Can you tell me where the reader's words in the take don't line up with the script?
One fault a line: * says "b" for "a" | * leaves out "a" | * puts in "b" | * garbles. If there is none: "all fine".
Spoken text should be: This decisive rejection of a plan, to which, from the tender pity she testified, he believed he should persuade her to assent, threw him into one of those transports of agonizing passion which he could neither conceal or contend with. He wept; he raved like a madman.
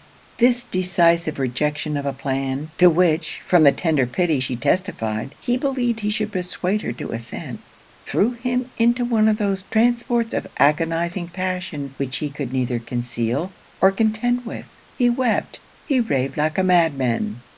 all fine